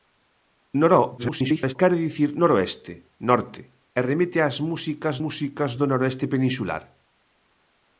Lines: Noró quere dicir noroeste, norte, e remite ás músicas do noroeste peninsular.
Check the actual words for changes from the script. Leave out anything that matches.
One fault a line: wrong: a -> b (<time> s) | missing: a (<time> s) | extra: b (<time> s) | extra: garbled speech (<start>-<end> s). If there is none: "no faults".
extra: garbled speech (1.2-1.8 s)
extra: músicas (5.2 s)